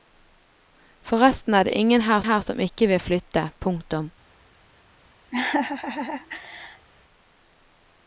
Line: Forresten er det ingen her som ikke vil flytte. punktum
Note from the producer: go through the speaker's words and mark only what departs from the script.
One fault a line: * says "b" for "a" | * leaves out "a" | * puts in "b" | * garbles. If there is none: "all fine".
* puts in "her"